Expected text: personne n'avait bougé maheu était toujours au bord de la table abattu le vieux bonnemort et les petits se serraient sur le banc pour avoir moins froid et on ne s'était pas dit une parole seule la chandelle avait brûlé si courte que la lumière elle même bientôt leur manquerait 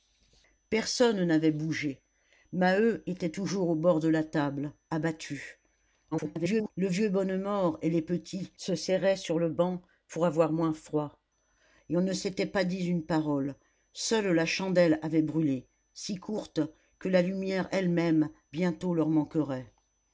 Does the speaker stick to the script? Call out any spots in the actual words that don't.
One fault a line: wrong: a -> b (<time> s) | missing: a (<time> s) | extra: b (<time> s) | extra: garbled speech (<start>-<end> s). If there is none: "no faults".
extra: garbled speech (6.1-6.7 s)